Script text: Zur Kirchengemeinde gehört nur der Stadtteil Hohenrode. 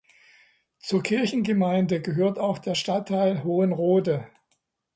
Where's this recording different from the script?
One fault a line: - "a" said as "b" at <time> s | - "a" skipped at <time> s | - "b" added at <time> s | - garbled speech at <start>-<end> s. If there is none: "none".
- "nur" said as "auch" at 2.4 s